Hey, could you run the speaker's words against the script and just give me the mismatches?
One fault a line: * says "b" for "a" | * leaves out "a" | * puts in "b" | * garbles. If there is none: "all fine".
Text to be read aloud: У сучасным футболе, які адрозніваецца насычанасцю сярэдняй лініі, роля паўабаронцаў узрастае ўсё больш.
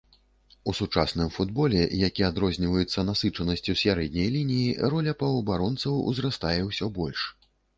all fine